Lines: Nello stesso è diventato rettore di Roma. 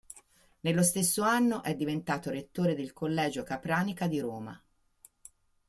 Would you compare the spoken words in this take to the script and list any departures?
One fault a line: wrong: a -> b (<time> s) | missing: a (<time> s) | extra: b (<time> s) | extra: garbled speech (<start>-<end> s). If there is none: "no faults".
extra: anno (1.2 s)
extra: del collegio Capranica (2.7 s)